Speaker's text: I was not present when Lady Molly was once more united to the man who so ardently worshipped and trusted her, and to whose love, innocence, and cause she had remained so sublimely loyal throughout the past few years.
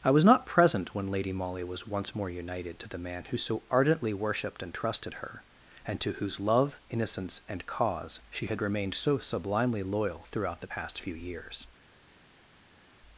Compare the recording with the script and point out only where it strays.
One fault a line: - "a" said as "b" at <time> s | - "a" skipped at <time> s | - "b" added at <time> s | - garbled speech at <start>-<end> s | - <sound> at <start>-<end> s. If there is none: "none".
none